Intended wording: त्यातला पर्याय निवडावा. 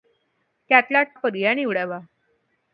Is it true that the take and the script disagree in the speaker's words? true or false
false